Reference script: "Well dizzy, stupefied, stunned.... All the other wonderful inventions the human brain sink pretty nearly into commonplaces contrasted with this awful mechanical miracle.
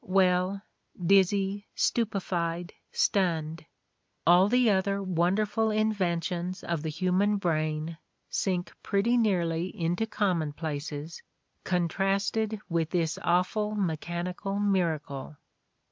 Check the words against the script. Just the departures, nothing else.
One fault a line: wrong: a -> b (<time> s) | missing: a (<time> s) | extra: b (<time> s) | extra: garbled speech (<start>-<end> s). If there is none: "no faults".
extra: of (6.6 s)